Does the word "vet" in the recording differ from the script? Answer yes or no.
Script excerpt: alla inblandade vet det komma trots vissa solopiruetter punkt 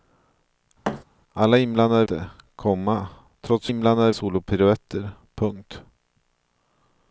yes